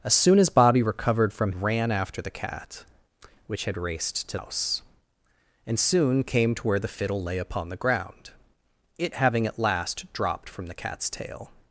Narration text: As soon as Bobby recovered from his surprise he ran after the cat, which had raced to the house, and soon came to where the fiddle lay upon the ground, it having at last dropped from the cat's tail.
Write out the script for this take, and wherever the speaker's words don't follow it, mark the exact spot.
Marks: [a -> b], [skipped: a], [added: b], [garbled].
As soon as Bobby recovered from [skipped: his surprise he] ran after the cat, which had raced to [skipped: the] house, and soon came to where the fiddle lay upon the ground, it having at last dropped from the cat's tail.